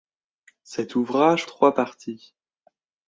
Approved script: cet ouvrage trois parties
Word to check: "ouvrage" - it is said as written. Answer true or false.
true